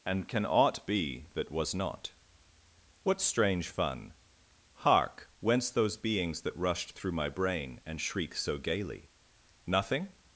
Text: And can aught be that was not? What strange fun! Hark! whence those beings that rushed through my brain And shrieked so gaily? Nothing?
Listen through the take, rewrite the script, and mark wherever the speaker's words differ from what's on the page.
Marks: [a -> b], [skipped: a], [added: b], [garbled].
And can aught be that was not? What strange fun! Hark! whence those beings that rushed through my brain And [shrieked -> shriek] so gaily? Nothing?